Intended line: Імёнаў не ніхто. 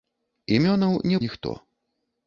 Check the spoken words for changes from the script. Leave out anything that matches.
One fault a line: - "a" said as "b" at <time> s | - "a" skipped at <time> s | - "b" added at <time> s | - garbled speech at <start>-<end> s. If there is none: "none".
none